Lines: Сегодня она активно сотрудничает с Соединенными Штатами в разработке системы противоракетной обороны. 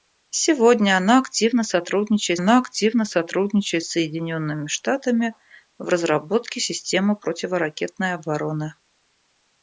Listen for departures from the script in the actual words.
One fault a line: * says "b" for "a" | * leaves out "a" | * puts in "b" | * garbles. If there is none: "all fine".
* puts in "она активно сотрудничает"